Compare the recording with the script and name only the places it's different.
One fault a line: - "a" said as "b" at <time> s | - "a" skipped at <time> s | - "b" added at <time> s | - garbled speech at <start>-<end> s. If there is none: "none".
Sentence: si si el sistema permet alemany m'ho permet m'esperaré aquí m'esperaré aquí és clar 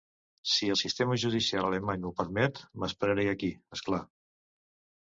- "si" skipped at 0.7 s
- "permet" said as "judicial" at 1.2 s
- "m'esperaré aquí" skipped at 3.5 s